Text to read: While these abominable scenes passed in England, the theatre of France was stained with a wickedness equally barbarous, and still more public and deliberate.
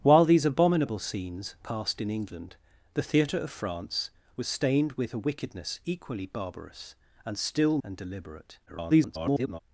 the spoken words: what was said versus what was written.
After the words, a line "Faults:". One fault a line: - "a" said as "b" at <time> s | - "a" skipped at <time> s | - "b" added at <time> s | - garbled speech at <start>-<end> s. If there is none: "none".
While these abominable scenes passed in England, the theatre of France was stained with a wickedness equally barbarous, and still and deliberate. [garbled]
Faults:
- "more public" skipped at 7.8 s
- garbled speech at 8.7-9.6 s